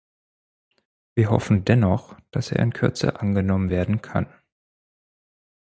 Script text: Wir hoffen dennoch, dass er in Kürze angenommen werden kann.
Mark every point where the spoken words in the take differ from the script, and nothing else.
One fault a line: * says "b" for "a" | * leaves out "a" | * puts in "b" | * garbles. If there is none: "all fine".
all fine